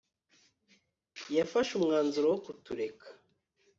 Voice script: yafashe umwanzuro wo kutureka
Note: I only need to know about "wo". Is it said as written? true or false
true